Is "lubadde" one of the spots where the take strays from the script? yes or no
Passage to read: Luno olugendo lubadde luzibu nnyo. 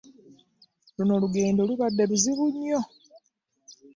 no